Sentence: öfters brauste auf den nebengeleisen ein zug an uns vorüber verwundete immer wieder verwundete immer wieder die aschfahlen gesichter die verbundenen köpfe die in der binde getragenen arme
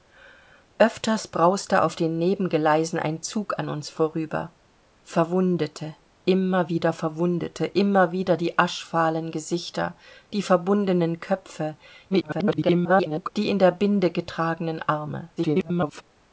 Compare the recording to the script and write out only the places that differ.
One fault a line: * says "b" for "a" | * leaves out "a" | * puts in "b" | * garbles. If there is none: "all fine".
* garbles
* garbles